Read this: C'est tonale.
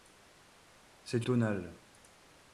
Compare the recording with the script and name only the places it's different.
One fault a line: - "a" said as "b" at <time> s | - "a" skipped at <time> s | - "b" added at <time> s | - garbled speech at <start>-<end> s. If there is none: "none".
none